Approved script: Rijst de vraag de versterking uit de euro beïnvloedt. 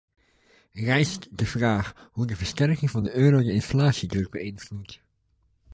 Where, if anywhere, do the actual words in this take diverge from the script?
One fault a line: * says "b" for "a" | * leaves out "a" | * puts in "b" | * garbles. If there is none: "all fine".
* puts in "hoe"
* says "van" for "uit"
* puts in "de inflatiedruk"